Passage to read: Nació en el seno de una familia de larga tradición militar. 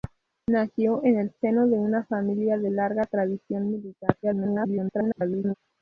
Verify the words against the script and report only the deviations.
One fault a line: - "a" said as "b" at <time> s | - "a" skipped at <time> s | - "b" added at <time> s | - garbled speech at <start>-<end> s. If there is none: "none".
- garbled speech at 4.2-5.5 s